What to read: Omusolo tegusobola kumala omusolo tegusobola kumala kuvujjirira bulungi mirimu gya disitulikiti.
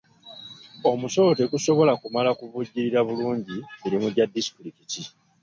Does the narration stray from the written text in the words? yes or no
yes